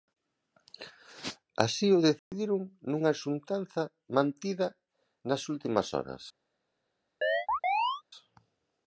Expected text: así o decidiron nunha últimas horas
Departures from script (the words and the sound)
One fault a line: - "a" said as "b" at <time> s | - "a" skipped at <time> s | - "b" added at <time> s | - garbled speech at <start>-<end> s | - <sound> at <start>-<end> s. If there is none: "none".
- dropout at 2.2-2.3 s
- "xuntanza mantida nas" added at 3.2 s
- chirp at 7.2-8.0 s